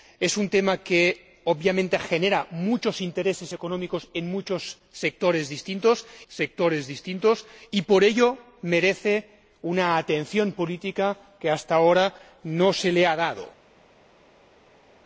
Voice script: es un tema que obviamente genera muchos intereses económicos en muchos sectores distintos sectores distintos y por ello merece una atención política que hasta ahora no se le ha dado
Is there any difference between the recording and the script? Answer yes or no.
no